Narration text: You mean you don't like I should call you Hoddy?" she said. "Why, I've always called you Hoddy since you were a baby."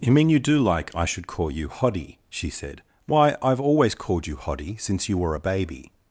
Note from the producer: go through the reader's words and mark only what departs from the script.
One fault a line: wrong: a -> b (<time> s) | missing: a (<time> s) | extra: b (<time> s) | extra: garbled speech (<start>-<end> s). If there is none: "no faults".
wrong: don't -> do (0.4 s)